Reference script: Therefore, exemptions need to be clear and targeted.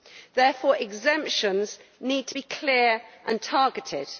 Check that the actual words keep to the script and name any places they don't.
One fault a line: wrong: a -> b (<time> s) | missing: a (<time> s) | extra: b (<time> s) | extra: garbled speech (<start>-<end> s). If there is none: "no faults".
no faults